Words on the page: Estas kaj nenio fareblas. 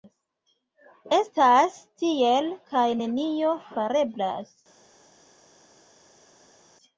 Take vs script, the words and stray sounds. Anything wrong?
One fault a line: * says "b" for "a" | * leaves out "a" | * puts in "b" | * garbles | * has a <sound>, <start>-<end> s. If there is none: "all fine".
* puts in "tiel"